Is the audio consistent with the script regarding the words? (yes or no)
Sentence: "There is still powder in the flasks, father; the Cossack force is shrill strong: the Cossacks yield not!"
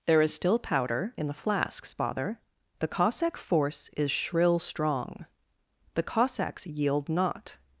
yes